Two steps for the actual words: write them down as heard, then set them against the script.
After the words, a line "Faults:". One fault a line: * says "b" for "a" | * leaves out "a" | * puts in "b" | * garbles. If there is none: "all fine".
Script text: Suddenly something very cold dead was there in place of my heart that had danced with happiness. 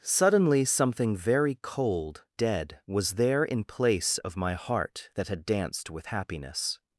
Suddenly something very cold dead was there in place of my heart that had danced with happiness.
Faults:
all fine